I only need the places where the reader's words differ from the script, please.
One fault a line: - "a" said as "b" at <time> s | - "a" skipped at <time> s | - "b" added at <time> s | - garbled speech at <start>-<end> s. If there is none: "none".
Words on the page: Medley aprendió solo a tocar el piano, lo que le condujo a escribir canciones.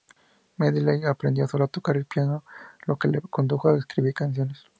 none